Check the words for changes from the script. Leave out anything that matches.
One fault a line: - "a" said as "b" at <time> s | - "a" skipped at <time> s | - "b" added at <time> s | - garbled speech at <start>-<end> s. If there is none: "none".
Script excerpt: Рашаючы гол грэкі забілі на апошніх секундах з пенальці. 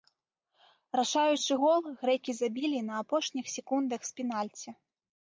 none